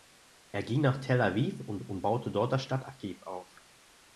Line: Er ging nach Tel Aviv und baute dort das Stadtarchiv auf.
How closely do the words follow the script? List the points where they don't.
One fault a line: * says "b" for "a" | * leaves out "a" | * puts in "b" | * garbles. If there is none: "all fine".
* puts in "und"